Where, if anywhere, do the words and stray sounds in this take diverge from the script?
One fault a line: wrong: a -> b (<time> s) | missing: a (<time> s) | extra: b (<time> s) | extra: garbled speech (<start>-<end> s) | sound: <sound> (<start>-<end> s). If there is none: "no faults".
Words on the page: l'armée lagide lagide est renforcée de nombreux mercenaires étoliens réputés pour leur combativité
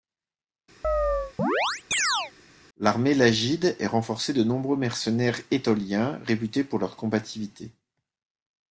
sound: chirp (0.8-2.3 s)
missing: lagide (3.8 s)